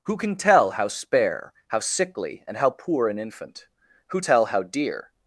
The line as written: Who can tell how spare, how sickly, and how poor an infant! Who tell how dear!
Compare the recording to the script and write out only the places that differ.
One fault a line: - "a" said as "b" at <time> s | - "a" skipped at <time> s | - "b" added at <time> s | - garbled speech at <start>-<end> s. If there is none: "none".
none